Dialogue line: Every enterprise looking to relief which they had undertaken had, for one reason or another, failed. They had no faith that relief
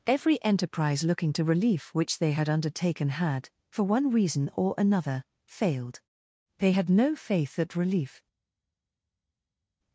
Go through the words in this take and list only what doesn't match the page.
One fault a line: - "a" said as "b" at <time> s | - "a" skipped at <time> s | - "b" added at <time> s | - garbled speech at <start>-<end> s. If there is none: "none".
none